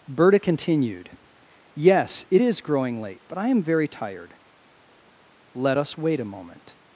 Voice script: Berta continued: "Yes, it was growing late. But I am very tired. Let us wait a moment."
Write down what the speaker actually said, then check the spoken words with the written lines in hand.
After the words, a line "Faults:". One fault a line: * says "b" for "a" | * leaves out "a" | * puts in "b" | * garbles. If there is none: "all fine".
Berta continued: "Yes, it is growing late. But I am very tired. Let us wait a moment."
Faults:
* says "is" for "was"